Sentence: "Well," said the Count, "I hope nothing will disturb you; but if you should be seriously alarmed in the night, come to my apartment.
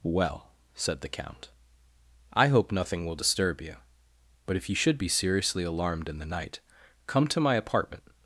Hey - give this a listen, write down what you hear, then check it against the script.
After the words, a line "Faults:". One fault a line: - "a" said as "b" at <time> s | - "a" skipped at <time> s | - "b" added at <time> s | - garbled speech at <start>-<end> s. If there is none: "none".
"Well," said the Count, "I hope nothing will disturb you; but if you should be seriously alarmed in the night, come to my apartment.
Faults:
none